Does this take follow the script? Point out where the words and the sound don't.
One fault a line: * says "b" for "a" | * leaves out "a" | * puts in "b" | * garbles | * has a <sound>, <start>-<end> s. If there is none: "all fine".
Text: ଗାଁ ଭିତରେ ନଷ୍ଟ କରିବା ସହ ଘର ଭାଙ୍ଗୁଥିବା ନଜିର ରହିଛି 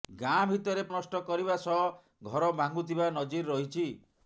all fine